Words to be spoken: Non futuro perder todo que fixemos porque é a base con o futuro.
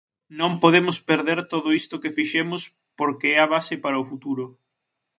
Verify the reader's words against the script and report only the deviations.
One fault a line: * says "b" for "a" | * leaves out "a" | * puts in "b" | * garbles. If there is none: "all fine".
* says "podemos" for "futuro"
* puts in "isto"
* says "para" for "con"